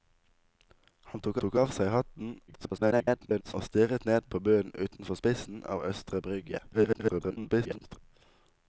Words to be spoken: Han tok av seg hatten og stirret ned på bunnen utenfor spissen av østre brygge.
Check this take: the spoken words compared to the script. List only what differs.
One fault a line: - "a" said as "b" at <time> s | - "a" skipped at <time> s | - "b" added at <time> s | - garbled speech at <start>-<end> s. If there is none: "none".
- "tok" added at 1.4 s
- garbled speech at 2.5-3.5 s
- garbled speech at 6.7-8.0 s